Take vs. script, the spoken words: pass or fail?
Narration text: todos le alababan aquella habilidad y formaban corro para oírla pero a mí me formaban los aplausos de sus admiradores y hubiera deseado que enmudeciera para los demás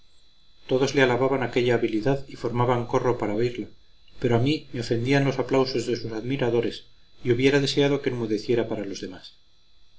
fail